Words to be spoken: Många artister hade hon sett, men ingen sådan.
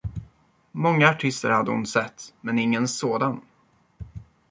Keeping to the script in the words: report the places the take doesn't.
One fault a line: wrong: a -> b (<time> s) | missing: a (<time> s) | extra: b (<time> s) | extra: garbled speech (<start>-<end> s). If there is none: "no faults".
no faults